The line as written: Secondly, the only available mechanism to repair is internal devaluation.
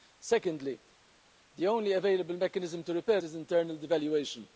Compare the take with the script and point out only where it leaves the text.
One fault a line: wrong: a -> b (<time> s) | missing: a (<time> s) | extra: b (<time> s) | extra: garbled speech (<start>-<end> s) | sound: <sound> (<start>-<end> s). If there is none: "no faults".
no faults